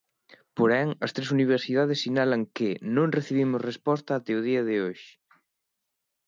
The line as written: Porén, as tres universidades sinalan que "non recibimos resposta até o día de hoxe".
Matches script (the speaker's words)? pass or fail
pass